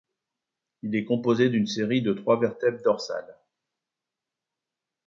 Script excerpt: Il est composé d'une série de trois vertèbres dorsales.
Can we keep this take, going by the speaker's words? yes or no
yes